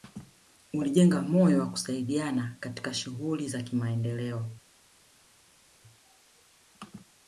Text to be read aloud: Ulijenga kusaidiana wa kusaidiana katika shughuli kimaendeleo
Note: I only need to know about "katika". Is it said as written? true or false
true